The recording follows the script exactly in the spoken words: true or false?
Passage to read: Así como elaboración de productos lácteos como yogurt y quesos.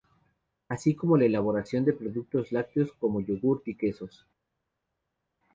false